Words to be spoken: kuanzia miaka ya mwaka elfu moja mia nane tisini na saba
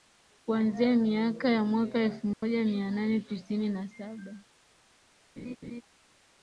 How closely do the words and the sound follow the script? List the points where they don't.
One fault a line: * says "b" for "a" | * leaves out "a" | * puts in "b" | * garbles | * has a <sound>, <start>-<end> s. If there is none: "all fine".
* has a dropout, 2.3-2.4 s
* has a laugh, 5.4-5.8 s